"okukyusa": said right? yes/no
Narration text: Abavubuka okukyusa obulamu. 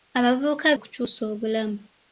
yes